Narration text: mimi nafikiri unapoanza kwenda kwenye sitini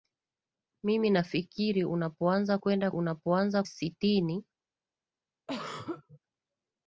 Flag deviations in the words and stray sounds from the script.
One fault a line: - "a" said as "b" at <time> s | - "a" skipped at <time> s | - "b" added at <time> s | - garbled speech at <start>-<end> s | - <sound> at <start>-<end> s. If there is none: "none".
- "kwenye" said as "unapoanza" at 2.9 s
- throat clearing at 5.5-6.2 s